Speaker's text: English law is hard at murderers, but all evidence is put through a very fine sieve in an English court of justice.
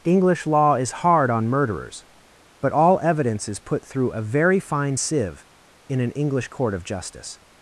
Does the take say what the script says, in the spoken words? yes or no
no